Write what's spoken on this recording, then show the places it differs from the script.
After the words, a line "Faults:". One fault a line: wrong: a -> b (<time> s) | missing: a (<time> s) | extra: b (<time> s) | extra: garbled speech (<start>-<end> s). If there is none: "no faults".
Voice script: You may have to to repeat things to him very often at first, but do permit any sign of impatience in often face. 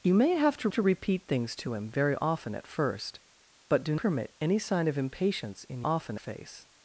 You may have to to repeat things to him very often at first, but do permit any sign of impatience in often face.
Faults:
no faults